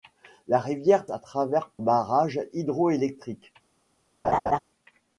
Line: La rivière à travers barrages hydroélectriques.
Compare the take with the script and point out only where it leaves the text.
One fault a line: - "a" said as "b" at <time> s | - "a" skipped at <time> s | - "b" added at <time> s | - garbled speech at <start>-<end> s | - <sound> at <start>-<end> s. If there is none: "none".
- laugh at 4.2-4.6 s